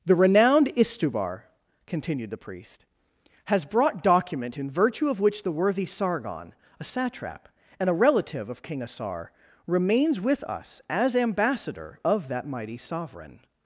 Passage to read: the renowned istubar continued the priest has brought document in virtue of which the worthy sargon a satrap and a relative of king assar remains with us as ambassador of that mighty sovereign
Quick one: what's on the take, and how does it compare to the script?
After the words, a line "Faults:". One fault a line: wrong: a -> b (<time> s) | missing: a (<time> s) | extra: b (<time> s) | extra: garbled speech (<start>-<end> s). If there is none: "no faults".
the renowned istubar continued the priest has brought document in virtue of which the worthy sargon a satrap and a relative of king assar remains with us as ambassador of that mighty sovereign
Faults:
no faults